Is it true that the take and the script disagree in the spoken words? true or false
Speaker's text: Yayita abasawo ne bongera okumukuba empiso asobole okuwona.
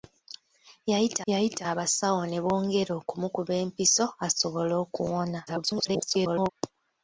true